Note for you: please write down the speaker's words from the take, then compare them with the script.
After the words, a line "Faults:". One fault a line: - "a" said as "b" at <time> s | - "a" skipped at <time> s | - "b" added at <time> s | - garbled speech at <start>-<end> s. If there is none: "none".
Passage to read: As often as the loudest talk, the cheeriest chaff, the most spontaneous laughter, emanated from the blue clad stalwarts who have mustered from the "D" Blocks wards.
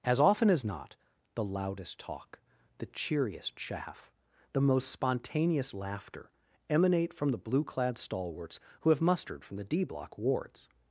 As often as not, the loudest talk, the cheeriest chaff, the most spontaneous laughter, emanate from the blue clad stalwarts who have mustered from the "D" Block wards.
Faults:
- "not" added at 0.7 s
- "emanated" said as "emanate" at 6.7 s
- "Blocks" said as "Block" at 9.8 s